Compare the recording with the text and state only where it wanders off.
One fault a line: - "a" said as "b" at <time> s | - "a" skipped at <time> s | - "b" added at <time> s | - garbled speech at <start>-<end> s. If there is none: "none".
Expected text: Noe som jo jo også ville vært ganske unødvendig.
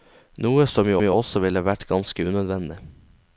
none